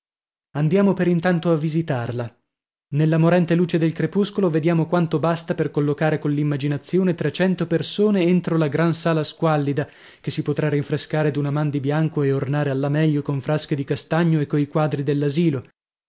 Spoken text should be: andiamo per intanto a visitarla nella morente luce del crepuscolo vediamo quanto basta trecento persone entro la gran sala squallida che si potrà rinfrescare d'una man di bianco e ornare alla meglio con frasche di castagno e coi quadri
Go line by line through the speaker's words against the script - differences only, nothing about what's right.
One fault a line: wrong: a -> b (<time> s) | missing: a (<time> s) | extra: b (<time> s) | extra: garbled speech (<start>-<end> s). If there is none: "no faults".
extra: per collocare coll'immaginazione (5.5 s)